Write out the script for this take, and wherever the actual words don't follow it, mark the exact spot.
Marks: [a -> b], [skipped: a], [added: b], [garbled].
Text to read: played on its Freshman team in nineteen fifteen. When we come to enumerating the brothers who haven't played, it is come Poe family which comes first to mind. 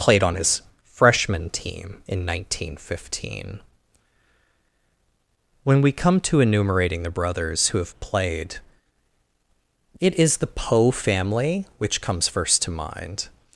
played on [its -> his] Freshman team in nineteen fifteen. When we come to enumerating the brothers who [haven't -> have] played, it is [come -> the] Poe family which comes first to mind.